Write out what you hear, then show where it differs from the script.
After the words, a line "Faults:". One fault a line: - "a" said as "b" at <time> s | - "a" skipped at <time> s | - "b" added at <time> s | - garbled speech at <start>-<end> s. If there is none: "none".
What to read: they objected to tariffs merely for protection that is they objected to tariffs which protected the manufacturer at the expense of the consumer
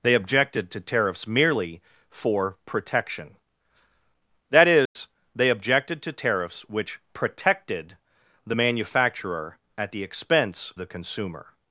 they objected to tariffs merely for protection that is they objected to tariffs which protected the manufacturer at the expense the consumer
Faults:
- "of" skipped at 10.7 s